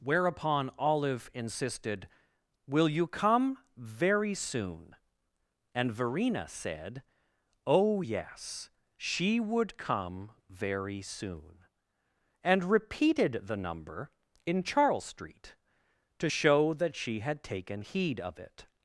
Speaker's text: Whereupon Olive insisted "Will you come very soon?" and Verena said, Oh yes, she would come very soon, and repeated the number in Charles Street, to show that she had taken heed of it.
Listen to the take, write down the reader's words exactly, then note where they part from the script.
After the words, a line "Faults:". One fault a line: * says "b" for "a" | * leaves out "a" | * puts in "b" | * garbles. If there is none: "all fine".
Whereupon Olive insisted "Will you come very soon?" and Verena said, Oh yes, she would come very soon, and repeated the number in Charles Street, to show that she had taken heed of it.
Faults:
all fine